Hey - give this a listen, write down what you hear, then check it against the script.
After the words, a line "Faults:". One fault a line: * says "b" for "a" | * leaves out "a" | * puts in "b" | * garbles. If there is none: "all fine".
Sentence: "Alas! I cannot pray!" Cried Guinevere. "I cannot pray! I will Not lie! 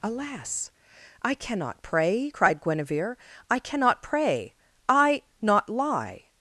"Alas! I cannot pray!" Cried Guinevere. "I cannot pray! I Not lie!
Faults:
* leaves out "will"